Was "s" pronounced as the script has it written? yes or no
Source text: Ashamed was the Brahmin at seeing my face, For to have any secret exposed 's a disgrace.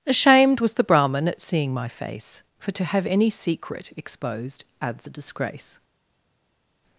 no